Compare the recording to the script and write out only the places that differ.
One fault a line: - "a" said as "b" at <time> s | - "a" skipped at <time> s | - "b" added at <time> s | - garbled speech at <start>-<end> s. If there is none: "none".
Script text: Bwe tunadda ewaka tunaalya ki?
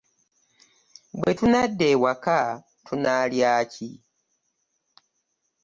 none